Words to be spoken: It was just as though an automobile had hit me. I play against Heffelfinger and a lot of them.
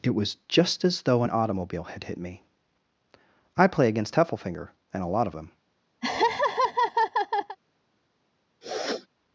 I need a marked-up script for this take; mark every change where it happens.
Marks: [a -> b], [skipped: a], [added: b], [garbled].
It was just as though an automobile had hit me. I play against Heffelfinger and a lot of them.